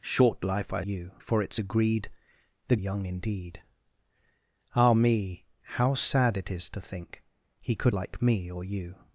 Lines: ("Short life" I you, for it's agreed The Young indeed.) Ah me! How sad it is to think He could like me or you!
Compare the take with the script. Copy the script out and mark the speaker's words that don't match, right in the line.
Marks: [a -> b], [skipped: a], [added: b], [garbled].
("Short life" I you, for it's agreed The Young indeed.) Ah me! How sad it is to think He could like me or you!